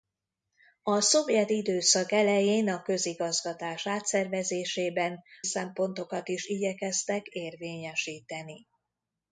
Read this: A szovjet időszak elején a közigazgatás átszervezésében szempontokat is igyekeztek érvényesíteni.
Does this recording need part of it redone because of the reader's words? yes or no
no